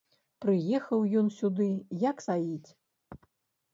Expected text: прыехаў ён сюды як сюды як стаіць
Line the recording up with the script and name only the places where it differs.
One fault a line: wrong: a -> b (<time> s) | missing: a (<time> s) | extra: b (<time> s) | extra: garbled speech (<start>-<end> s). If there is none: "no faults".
missing: сюды як (2.2 s)